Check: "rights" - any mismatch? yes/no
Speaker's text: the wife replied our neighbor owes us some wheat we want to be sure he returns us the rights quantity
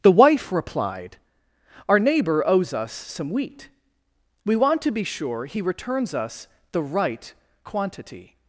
yes